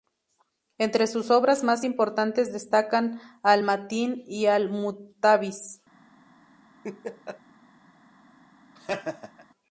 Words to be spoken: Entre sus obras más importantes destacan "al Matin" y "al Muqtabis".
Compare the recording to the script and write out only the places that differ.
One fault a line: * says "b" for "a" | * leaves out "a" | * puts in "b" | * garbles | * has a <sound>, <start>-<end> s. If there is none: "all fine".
* has a laugh, 6.8-7.4 s
* has a laugh, 8.8-9.5 s